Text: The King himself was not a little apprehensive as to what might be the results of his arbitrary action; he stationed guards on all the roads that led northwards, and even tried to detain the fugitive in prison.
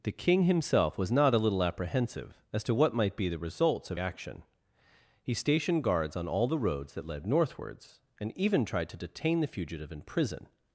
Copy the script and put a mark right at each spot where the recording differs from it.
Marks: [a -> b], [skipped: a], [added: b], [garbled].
The King himself was not a little apprehensive as to what might be the results of [skipped: his arbitrary] action; he stationed guards on all the roads that led northwards, and even tried to detain the fugitive in prison.